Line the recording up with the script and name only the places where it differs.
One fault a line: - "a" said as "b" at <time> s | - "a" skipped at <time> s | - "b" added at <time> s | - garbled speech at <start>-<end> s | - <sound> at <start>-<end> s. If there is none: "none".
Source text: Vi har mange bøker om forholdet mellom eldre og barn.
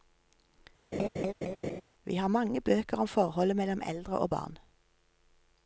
- laugh at 0.9-1.8 s